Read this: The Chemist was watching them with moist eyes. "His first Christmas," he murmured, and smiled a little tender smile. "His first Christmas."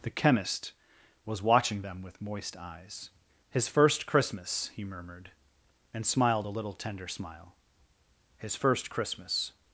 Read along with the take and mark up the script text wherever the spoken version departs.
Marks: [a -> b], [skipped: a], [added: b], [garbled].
The Chemist was watching them with moist eyes. "His first Christmas," he murmured, and smiled a little tender smile. "His first Christmas."